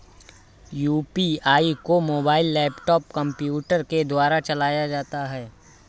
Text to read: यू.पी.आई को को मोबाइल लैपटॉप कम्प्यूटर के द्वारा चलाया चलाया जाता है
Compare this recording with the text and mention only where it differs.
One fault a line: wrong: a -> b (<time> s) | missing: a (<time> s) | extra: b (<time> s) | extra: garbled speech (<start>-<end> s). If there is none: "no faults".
missing: को (2.0 s)
missing: चलाया (4.9 s)